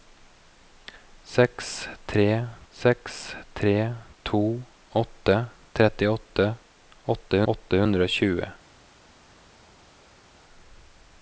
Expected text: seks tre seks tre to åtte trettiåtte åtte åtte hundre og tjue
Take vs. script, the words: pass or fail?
pass